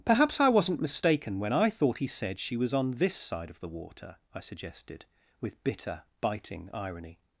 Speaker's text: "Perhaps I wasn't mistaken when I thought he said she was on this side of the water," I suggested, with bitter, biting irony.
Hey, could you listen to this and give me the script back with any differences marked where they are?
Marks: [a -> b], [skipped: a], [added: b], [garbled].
"Perhaps I wasn't mistaken when I thought he said she was on this side of the water," I suggested, with bitter, biting irony.